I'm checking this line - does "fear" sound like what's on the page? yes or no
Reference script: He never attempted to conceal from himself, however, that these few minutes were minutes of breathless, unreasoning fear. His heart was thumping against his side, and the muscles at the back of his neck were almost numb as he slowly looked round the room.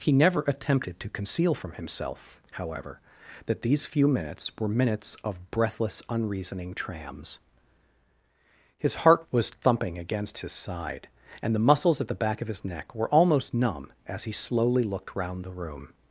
no